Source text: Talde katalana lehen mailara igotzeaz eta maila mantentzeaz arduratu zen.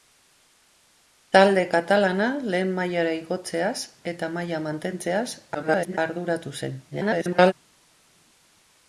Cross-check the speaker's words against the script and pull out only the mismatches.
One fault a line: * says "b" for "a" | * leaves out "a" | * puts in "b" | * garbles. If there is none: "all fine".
* garbles
* garbles